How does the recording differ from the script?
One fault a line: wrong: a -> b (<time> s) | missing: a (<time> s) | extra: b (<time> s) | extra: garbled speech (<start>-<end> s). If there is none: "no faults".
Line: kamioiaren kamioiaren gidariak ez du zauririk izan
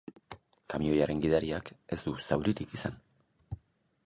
missing: kamioiaren (1.2 s)